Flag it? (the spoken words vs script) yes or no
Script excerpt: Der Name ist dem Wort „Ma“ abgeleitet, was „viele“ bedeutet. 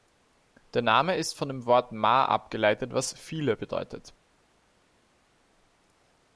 yes